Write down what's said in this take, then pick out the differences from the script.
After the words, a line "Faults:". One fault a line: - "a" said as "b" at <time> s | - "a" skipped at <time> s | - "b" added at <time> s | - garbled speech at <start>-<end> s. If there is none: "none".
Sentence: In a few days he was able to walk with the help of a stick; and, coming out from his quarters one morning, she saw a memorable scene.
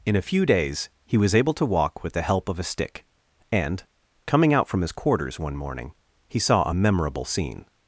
In a few days he was able to walk with the help of a stick; and, coming out from his quarters one morning, he saw a memorable scene.
Faults:
- "she" said as "he" at 6.3 s